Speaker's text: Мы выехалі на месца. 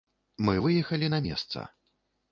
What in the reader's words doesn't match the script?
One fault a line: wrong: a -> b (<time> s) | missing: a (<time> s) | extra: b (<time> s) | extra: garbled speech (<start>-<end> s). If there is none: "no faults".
no faults